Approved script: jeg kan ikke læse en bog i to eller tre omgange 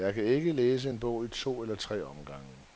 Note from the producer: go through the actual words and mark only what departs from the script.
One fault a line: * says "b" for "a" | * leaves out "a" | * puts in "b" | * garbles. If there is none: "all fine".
all fine